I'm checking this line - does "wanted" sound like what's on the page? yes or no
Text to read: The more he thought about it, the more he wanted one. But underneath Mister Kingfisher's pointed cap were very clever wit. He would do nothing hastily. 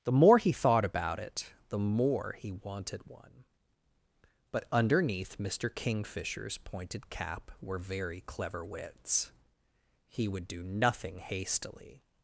yes